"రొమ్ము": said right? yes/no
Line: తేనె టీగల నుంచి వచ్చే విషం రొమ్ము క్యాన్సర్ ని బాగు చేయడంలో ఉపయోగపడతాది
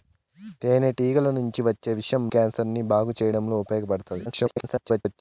no